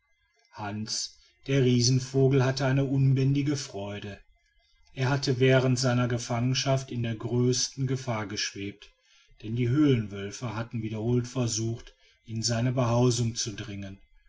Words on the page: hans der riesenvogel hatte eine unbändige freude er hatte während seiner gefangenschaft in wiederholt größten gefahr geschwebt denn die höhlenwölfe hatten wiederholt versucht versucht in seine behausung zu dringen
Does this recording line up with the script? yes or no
no